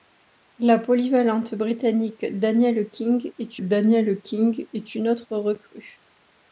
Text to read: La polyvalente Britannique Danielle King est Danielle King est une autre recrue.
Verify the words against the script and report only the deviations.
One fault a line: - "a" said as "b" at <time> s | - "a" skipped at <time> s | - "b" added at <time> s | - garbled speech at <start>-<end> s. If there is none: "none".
none